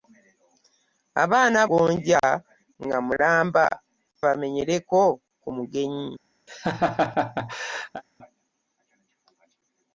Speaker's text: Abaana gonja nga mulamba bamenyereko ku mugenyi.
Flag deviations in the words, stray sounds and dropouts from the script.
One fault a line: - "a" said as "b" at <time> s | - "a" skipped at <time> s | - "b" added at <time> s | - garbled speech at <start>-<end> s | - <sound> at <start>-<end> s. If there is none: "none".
- laugh at 6.5-8.0 s